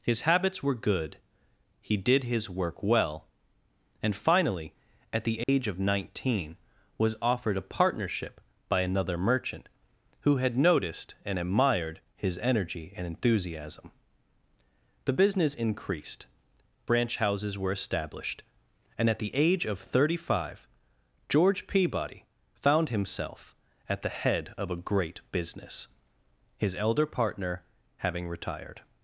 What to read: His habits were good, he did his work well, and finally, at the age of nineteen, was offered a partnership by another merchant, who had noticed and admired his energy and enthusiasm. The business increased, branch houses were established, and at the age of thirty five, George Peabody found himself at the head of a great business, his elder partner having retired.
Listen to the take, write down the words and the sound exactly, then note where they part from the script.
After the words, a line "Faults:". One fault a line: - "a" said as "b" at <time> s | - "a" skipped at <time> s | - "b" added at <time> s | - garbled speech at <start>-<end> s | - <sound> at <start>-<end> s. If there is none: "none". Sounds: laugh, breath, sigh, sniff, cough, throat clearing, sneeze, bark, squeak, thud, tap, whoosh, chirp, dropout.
His habits were good, he did his work well, and finally, at the age of nineteen, was offered a partnership by another merchant, who had noticed and admired his energy and enthusiasm. The business increased, branch houses were established, and at the age of thirty five, George Peabody found himself at the head of a great business, his elder partner having retired.
Faults:
- dropout at 5.4-5.5 s